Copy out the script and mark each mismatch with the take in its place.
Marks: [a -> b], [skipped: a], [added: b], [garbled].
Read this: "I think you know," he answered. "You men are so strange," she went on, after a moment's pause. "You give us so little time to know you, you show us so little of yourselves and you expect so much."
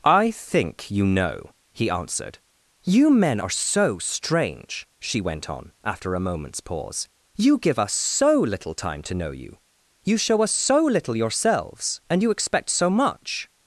"I think you know," he answered. "You men are so strange," she went on, after a moment's pause. "You give us so little time to know you, you show us so little [skipped: of] yourselves and you expect so much."